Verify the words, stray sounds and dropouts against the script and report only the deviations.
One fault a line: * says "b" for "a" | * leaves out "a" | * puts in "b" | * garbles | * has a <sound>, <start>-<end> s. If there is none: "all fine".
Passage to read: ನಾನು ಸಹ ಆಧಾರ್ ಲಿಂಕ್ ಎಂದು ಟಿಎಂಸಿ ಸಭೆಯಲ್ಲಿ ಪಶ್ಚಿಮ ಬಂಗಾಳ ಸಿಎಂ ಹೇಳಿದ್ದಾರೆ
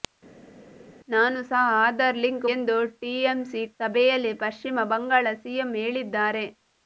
all fine